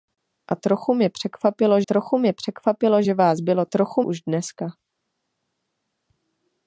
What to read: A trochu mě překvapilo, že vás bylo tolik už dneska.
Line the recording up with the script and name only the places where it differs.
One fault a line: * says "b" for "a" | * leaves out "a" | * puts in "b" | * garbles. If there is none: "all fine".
* puts in "trochu mě překvapilo"
* says "trochu" for "tolik"